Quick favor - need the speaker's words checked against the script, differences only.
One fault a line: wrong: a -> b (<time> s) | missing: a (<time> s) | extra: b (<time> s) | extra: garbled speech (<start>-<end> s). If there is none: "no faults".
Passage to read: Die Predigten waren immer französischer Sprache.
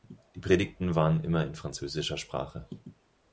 extra: in (1.4 s)